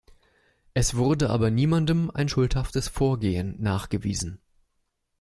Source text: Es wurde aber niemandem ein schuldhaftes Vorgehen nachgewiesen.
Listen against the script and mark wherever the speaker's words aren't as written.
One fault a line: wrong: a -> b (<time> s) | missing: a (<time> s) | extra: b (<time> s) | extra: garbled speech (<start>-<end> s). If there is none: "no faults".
no faults